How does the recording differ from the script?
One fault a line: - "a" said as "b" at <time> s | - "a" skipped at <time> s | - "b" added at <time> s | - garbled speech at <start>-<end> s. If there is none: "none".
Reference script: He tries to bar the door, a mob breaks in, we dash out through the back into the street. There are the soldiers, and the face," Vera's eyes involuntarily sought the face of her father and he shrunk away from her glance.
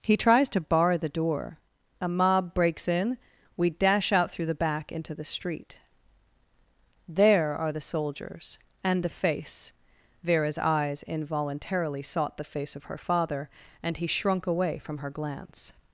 none